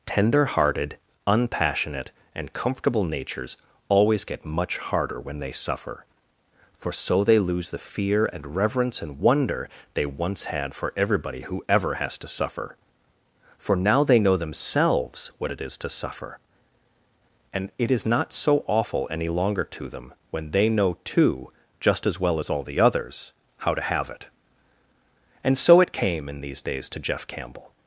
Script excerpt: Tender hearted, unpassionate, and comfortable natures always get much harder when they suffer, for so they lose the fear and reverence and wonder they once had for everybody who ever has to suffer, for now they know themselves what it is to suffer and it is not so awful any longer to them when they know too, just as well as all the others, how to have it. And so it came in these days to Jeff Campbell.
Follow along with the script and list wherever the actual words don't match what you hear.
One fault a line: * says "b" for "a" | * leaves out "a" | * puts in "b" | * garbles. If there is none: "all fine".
all fine